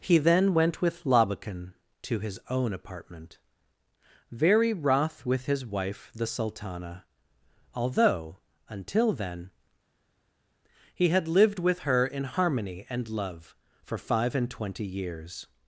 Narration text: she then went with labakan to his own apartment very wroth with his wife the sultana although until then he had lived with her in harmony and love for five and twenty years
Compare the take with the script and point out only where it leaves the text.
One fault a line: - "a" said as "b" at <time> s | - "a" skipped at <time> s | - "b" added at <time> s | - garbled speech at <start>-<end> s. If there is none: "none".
- "she" said as "he" at 0.0 s